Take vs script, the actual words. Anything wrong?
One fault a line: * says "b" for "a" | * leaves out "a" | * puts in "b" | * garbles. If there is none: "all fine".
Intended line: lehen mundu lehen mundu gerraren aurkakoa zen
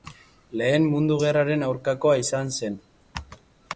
* leaves out "lehen mundu"
* puts in "izan"